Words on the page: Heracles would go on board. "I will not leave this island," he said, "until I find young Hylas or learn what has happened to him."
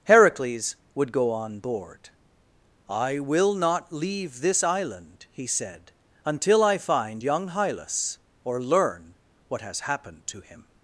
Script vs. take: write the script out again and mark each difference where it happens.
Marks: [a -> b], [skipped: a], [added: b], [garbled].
Heracles would go on board. "I will not leave this island," he said, "until I find young Hylas or learn what has happened to him."